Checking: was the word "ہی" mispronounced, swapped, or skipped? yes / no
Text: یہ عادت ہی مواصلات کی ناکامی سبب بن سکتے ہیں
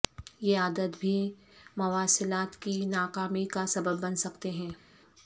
yes